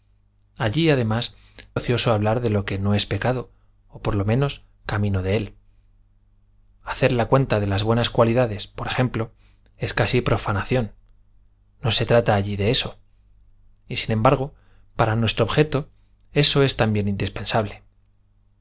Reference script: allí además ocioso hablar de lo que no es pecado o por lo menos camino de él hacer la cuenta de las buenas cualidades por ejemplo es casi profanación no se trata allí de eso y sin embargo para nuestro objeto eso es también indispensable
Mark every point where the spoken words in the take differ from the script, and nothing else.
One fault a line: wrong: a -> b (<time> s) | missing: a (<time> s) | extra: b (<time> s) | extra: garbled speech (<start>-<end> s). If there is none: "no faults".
no faults